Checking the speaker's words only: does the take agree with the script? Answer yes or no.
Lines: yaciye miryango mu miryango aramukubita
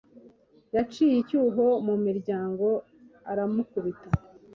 no